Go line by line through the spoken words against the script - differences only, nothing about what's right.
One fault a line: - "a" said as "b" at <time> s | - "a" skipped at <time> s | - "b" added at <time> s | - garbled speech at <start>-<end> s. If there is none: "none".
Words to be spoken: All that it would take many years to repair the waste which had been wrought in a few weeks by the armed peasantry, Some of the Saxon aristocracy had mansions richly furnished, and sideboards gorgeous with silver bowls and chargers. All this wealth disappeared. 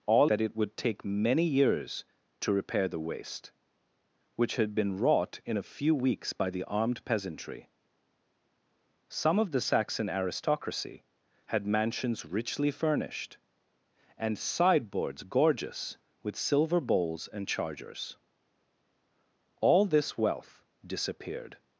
none